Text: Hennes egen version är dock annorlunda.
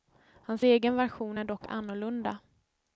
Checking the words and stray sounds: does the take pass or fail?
fail